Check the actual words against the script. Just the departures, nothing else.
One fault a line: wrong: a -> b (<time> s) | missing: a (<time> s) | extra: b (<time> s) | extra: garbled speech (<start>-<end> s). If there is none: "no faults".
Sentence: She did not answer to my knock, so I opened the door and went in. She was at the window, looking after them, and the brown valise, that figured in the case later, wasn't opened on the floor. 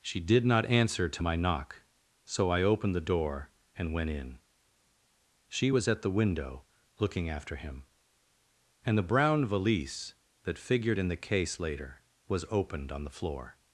wrong: them -> him (7.6 s)
wrong: wasn't -> was (12.3 s)